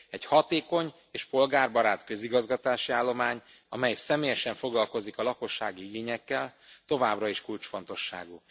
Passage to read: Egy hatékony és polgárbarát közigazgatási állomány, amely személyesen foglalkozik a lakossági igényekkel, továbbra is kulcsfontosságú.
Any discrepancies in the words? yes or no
no